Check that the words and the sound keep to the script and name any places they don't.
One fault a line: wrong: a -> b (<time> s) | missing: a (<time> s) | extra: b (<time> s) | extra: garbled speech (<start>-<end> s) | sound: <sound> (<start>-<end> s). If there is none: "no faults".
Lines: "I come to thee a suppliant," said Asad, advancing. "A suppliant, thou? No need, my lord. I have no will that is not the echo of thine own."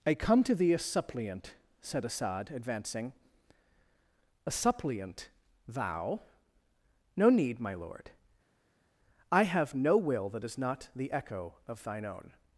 no faults